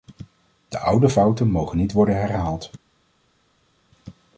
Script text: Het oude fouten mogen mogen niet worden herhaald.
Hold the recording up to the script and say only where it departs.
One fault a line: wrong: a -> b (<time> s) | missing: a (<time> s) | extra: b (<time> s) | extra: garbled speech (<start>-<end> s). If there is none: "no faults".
wrong: Het -> De (0.7 s)
missing: mogen (1.8 s)